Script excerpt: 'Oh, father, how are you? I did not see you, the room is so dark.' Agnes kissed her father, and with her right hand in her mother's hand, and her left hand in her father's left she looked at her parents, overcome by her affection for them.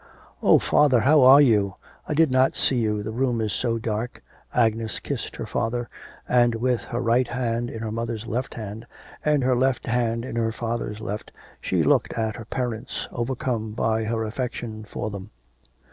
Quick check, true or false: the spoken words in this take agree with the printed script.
false